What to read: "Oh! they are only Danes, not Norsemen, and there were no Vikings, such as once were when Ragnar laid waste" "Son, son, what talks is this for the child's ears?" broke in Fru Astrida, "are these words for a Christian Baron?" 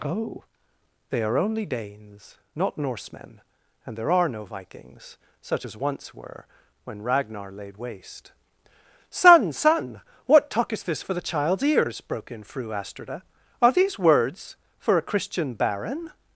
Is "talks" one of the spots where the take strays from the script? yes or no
yes